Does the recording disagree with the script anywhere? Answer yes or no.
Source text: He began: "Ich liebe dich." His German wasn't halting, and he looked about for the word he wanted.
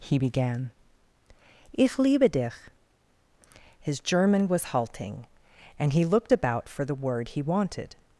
yes